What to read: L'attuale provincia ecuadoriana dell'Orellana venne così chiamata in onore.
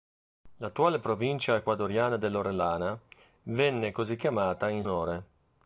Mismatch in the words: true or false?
false